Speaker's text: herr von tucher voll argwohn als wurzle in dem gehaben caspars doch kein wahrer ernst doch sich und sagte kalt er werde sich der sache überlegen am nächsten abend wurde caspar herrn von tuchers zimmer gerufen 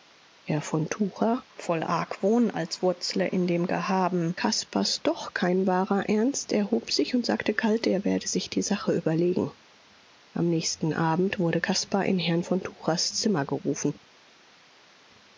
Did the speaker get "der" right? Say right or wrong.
wrong